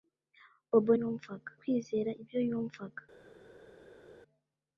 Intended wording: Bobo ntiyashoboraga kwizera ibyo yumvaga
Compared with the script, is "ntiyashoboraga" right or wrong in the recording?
wrong